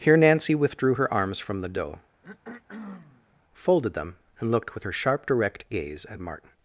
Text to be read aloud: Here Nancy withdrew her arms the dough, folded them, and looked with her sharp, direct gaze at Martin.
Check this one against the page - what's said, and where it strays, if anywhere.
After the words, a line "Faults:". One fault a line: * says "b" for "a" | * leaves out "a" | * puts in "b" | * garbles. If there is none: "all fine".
Here Nancy withdrew her arms from the dough, folded them, and looked with her sharp, direct gaze at Martin.
Faults:
* puts in "from"